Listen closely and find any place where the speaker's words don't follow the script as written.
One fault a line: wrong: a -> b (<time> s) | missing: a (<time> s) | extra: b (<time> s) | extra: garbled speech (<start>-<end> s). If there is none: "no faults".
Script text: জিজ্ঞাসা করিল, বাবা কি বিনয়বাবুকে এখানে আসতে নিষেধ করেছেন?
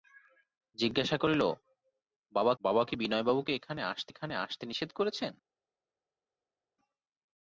extra: বাবা (2.6 s)
extra: এখানে আসতে (4.1 s)